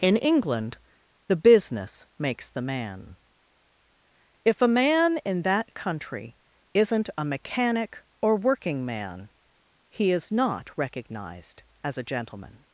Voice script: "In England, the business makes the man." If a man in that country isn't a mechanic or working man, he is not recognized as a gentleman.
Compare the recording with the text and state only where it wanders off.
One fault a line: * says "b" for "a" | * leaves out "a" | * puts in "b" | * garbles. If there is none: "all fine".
all fine